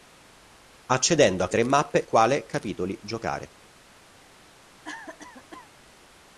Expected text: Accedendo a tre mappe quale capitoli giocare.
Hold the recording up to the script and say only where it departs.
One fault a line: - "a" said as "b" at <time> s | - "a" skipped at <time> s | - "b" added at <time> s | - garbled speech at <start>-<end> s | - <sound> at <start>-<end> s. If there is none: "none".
- cough at 4.8-5.7 s